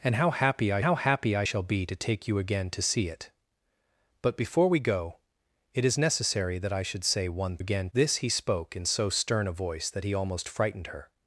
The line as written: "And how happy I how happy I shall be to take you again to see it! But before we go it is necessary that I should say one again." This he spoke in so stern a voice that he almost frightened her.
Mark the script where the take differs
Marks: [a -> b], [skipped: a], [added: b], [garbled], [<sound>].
"And how happy I how happy I shall be to take you again to see it! But before we go it is necessary that I should say one again." This he spoke in so stern a voice that he almost frightened her.